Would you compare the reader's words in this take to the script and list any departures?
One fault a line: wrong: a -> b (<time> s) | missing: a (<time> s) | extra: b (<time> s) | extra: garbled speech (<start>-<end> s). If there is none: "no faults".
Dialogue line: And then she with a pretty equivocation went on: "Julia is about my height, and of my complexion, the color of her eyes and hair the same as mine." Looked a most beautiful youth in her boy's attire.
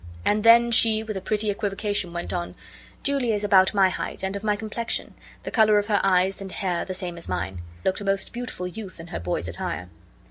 no faults